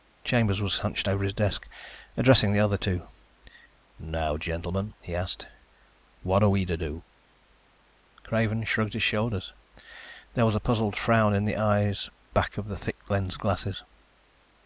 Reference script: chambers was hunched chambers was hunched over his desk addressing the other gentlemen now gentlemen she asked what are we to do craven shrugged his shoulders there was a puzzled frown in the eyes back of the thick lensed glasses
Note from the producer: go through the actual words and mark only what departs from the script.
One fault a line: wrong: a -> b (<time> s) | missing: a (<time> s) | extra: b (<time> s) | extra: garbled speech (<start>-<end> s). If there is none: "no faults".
missing: chambers was hunched (1.1 s)
wrong: gentlemen -> two (2.8 s)
wrong: she -> he (5.0 s)